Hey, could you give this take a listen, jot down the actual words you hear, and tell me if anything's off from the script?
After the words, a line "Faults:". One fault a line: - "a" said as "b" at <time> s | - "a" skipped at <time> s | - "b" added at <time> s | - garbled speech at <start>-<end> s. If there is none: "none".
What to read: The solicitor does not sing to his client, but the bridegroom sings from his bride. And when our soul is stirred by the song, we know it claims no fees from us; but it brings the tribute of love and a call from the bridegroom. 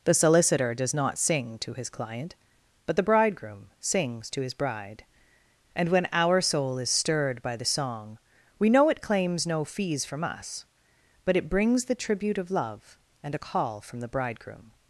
The solicitor does not sing to his client, but the bridegroom sings to his bride. And when our soul is stirred by the song, we know it claims no fees from us; but it brings the tribute of love and a call from the bridegroom.
Faults:
- "from" said as "to" at 4.3 s